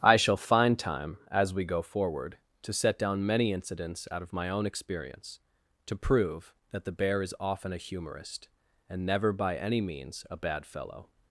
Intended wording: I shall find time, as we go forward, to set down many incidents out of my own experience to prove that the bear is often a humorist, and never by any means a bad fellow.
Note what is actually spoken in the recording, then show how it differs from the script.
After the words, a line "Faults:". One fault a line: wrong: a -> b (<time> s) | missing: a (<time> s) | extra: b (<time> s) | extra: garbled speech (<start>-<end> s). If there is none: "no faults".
I shall find time, as we go forward, to set down many incidents out of my own experience to prove that the bear is often a humorist, and never by any means a bad fellow.
Faults:
no faults